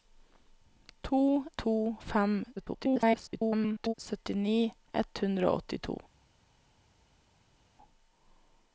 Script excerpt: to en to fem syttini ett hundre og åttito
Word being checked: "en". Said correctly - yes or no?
no